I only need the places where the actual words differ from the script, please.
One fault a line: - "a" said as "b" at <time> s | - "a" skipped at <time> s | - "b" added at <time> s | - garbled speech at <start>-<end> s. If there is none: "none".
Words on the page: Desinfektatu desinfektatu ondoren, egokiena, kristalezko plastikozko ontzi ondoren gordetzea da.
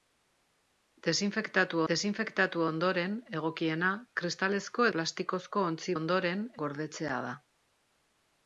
none